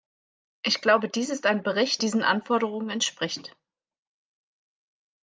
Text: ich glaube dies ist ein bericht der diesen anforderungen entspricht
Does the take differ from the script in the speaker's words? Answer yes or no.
yes